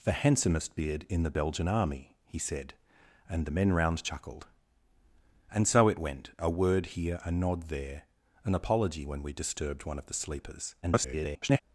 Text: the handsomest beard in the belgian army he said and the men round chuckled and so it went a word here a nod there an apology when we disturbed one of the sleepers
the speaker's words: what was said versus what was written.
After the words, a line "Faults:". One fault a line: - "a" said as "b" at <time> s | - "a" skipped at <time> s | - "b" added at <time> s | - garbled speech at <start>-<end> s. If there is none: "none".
the handsomest beard in the belgian army he said and the men round chuckled and so it went a word here a nod there an apology when we disturbed one of the sleepers [garbled]
Faults:
- garbled speech at 10.8-11.6 s